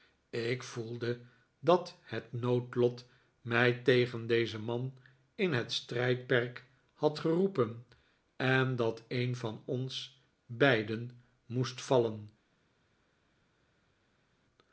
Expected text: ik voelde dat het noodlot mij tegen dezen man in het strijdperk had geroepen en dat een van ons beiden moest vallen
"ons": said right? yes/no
yes